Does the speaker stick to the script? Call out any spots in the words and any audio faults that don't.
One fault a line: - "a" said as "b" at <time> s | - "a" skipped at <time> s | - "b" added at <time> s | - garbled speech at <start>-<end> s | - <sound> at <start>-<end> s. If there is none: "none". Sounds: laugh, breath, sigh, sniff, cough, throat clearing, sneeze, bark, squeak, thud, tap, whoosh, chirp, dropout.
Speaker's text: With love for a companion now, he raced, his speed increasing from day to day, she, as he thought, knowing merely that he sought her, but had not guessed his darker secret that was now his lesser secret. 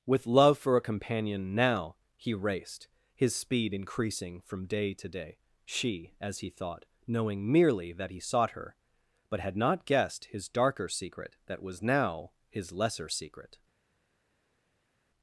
none